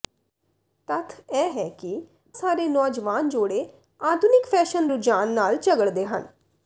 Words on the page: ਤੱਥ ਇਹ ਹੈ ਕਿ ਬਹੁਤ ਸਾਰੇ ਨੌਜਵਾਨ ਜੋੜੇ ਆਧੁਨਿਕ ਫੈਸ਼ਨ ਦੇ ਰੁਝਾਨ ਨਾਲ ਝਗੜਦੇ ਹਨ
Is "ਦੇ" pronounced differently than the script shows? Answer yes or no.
yes